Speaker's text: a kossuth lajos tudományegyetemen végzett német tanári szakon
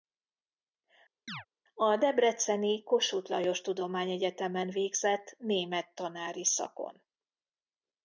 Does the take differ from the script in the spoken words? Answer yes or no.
yes